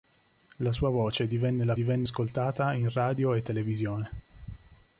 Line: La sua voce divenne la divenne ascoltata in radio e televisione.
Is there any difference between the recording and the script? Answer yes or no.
no